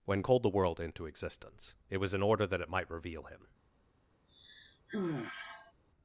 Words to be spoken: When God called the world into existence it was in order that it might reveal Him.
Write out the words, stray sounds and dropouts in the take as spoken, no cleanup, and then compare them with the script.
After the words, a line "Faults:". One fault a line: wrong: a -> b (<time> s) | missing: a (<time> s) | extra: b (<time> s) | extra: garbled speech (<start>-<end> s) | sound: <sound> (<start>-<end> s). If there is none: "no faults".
When Called the world into existence it was in order that it might reveal Him.
Faults:
missing: God (0.2 s)
sound: sigh (4.3-5.7 s)